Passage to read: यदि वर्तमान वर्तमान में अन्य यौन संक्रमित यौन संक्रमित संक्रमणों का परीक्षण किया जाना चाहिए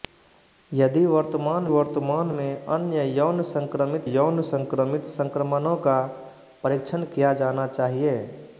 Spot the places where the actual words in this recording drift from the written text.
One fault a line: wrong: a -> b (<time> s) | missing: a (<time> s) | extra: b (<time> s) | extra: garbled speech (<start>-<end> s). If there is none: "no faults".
no faults